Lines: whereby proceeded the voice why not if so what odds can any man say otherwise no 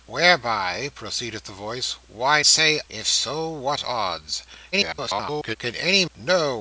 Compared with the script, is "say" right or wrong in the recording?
wrong